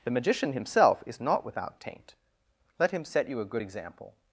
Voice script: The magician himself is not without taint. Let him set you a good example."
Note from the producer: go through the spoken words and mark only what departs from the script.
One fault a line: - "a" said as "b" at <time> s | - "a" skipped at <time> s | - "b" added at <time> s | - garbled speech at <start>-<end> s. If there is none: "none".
none